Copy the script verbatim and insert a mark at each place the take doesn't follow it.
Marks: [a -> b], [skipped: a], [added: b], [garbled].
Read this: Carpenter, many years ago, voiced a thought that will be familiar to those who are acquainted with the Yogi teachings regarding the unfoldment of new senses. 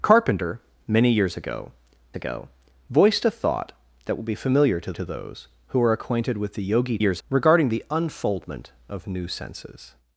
Carpenter, many years ago, [added: ago] voiced a thought that will be familiar to [added: to] those who are acquainted with the Yogi [teachings -> years] regarding the unfoldment of new senses.